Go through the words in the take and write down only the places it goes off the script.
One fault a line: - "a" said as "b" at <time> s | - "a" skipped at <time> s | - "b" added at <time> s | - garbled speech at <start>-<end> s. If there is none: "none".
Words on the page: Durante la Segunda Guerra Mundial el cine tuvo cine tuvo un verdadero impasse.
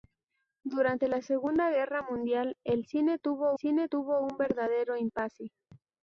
none